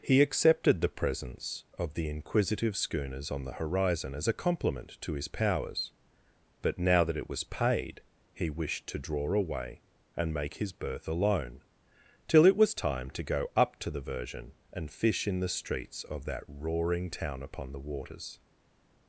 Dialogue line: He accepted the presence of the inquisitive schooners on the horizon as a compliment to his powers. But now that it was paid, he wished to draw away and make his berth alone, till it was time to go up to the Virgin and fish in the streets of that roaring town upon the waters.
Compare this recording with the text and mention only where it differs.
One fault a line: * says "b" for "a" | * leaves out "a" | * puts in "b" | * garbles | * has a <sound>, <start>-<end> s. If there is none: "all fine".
all fine